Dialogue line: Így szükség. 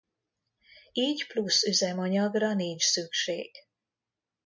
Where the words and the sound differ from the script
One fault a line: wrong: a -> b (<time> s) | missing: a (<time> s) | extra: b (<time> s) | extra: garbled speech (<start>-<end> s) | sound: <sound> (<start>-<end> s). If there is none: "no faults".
extra: plusz üzemanyagra nincs (1.3 s)